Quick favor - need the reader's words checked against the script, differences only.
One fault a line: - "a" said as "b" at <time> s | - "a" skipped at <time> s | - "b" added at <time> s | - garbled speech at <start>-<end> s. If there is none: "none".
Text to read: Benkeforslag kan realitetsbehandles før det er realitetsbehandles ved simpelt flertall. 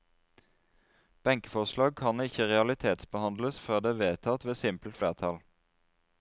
- "ikke" added at 2.2 s
- "realitetsbehandles" said as "vedtatt" at 4.0 s